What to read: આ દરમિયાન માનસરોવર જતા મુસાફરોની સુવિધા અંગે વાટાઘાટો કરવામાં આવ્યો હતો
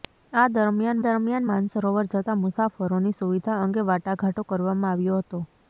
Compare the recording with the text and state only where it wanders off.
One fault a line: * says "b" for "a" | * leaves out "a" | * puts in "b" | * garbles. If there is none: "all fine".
* puts in "દરમિયાન"